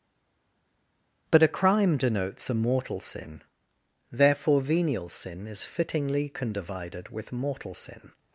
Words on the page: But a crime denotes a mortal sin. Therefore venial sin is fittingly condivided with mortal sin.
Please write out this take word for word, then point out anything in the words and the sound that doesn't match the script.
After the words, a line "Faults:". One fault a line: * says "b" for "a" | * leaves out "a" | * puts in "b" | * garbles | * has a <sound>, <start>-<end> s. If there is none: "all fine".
But a crime denotes a mortal sin. Therefore venial sin is fittingly condivided with mortal sin.
Faults:
all fine